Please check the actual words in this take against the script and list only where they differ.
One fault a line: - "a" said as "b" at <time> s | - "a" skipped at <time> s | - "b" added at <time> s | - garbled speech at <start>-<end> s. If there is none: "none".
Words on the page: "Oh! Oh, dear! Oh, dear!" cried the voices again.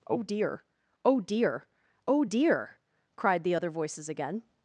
- "dear" added at 0.2 s
- "other" added at 3.5 s